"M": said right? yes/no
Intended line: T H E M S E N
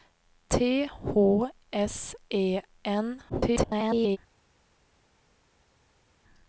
no